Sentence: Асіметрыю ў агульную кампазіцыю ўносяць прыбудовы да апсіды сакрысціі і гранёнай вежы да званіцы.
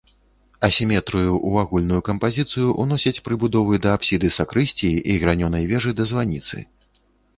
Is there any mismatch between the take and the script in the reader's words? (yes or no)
no